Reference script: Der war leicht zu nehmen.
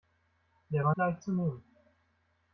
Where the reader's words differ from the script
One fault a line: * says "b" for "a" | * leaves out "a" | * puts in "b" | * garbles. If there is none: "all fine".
all fine